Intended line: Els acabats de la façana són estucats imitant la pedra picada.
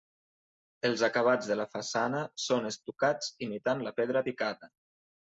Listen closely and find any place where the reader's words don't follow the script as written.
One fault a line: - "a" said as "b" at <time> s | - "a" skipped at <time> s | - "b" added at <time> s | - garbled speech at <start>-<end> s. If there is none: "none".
none